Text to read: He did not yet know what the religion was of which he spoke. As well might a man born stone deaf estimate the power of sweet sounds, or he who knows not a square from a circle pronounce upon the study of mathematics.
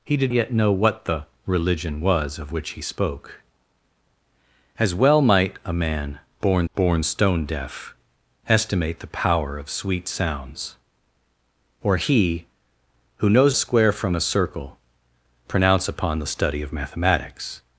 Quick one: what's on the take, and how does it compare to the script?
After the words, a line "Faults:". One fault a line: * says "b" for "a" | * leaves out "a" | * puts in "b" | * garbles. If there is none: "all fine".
He did yet know what the religion was of which he spoke. As well might a man born born stone deaf estimate the power of sweet sounds, or he who knows a square from a circle pronounce upon the study of mathematics.
Faults:
* leaves out "not"
* puts in "born"
* leaves out "not"